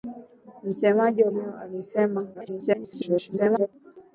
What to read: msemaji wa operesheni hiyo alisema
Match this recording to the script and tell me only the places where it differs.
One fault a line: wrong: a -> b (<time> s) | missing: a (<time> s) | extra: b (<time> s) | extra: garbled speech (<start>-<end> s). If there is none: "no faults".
missing: operesheni (1.3 s)
extra: garbled speech (2.3-3.7 s)